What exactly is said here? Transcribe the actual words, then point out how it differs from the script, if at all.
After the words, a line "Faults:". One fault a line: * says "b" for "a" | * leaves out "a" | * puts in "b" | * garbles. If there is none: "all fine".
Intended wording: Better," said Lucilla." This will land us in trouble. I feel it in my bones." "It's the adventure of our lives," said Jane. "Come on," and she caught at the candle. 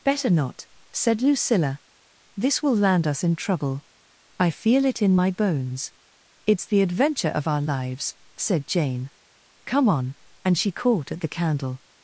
Better not," said Lucilla." This will land us in trouble. I feel it in my bones." "It's the adventure of our lives," said Jane. "Come on," and she caught at the candle.
Faults:
* puts in "not"